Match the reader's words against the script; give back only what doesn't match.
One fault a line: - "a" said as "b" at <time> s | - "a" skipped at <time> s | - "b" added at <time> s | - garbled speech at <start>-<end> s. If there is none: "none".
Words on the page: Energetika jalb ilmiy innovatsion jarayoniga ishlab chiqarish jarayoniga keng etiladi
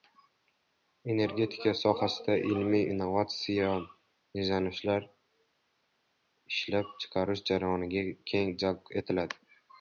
- "jalb" said as "sohasida" at 1.8 s
- "jarayoniga" said as "izlanishlar" at 4.5 s
- "jalb" added at 8.7 s